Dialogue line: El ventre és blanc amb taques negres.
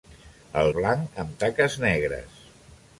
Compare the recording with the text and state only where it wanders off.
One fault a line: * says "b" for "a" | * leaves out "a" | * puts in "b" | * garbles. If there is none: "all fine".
* leaves out "ventre és"